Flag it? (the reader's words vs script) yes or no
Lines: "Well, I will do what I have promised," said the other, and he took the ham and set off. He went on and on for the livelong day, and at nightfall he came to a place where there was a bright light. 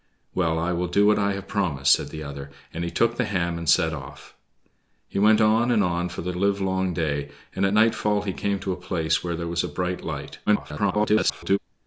yes